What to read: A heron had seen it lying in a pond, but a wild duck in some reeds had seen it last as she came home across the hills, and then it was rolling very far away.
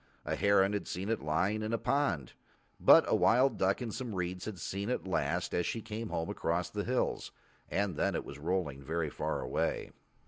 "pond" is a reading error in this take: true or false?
false